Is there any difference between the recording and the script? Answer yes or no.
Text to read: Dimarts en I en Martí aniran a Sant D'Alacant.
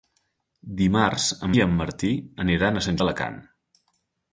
no